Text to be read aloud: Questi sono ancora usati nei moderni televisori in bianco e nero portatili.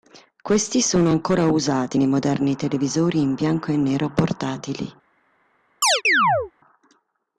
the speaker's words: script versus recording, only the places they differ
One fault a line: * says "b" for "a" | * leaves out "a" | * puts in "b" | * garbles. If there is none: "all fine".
all fine